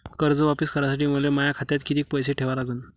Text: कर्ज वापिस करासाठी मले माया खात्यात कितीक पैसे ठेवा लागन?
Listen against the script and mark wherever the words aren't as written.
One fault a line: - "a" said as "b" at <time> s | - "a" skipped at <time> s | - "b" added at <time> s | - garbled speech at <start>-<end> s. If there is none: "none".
none